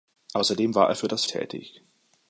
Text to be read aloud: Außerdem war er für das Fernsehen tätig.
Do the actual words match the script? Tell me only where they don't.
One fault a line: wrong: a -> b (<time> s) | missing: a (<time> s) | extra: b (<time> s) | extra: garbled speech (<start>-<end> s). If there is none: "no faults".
missing: Fernsehen (1.3 s)